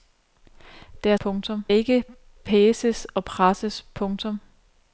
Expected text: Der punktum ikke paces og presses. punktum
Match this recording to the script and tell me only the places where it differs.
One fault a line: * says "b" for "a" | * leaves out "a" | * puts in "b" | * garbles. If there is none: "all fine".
all fine